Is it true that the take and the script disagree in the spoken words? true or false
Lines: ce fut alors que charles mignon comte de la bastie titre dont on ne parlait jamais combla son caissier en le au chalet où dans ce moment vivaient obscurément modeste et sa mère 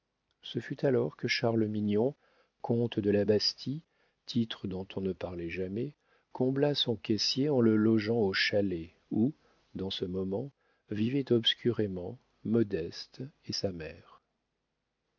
true